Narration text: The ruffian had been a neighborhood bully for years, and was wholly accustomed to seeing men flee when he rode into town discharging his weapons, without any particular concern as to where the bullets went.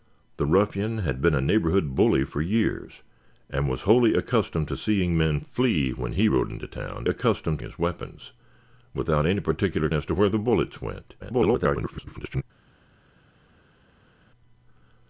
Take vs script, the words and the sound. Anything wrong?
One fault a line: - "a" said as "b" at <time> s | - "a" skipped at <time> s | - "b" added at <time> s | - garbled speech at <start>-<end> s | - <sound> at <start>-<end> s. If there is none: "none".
- "discharging" said as "accustomed" at 7.1 s
- "concern" skipped at 9.9 s
- garbled speech at 11.2-12.4 s